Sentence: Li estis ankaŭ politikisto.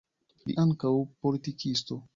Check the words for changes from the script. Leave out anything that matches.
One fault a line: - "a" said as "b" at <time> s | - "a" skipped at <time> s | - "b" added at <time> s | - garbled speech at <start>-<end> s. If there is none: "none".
- "estis" skipped at 0.6 s